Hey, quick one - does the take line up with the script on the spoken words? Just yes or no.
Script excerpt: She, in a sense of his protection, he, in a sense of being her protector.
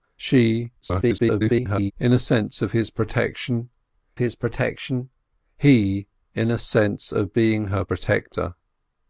no